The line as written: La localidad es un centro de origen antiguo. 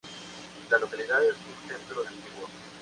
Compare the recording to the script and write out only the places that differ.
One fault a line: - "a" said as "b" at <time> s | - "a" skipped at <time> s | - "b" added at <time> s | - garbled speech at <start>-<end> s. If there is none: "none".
- "de origen" skipped at 2.0 s